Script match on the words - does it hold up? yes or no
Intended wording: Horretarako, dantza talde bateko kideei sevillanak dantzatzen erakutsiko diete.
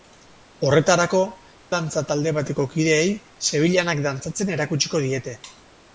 yes